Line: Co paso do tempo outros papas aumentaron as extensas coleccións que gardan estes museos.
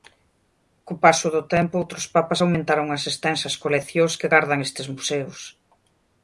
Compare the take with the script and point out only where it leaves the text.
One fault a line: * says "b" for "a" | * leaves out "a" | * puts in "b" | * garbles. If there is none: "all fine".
all fine